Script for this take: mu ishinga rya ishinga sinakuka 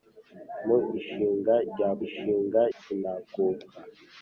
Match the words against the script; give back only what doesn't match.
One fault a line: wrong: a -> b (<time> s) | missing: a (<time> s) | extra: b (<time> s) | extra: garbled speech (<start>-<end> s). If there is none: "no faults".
no faults